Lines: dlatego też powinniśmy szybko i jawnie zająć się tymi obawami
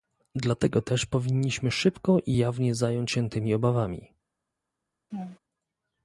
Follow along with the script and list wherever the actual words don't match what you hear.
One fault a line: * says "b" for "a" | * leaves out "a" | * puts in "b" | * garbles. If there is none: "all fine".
all fine